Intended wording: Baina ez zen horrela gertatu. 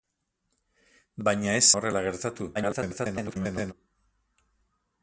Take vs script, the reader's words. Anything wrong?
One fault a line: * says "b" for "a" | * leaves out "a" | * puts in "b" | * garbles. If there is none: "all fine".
* leaves out "zen"
* garbles